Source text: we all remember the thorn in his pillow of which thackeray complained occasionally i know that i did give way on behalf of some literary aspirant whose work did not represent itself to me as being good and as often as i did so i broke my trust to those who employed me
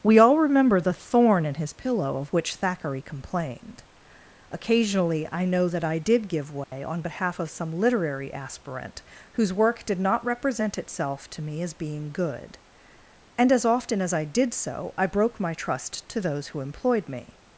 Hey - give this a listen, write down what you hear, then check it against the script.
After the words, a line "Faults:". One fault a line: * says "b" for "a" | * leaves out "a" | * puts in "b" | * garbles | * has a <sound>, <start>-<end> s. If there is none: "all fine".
we all remember the thorn in his pillow of which thackeray complained occasionally i know that i did give way on behalf of some literary aspirant whose work did not represent itself to me as being good and as often as i did so i broke my trust to those who employed me
Faults:
* has a dropout, 6.6-6.7 s